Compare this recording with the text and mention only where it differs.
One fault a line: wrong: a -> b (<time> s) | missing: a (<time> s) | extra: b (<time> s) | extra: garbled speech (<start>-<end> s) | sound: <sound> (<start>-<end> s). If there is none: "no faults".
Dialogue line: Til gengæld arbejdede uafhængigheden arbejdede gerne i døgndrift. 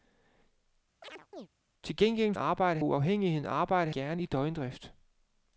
sound: chirp (1.0-1.5 s)